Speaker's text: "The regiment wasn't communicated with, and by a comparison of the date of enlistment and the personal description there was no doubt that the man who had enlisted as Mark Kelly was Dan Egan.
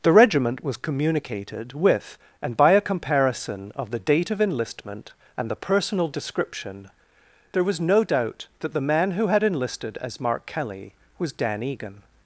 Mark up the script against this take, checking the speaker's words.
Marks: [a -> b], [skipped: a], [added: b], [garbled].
"The regiment [wasn't -> was] communicated with, and by a comparison of the date of enlistment and the personal description there was no doubt that the man who had enlisted as Mark Kelly was Dan Egan.